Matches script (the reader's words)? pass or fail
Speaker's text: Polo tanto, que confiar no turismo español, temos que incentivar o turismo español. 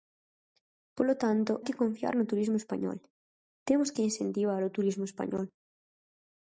pass